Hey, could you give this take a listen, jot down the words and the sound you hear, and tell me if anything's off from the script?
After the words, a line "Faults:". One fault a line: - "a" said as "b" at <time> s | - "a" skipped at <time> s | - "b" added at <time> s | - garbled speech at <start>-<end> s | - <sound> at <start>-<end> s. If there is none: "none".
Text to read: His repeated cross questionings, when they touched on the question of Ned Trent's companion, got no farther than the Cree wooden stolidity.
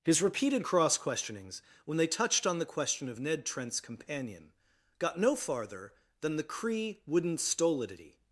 His repeated cross questionings, when they touched on the question of Ned Trent's companion, got no farther than the Cree wooden stolidity.
Faults:
none